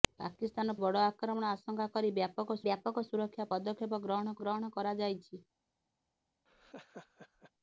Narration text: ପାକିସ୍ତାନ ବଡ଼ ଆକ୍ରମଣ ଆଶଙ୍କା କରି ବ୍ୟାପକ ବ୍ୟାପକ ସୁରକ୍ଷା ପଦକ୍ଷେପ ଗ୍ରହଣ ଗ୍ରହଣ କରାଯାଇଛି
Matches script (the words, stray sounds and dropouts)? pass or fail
fail